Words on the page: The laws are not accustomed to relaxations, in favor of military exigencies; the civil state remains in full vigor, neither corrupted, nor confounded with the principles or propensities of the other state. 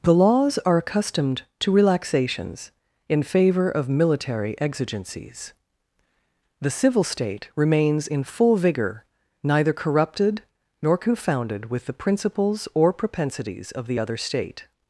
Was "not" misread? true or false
true